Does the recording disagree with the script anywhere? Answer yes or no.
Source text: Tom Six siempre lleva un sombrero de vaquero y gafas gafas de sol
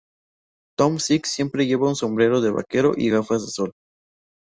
yes